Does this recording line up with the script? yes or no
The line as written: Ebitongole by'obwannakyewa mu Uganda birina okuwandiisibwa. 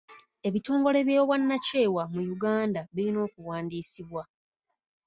yes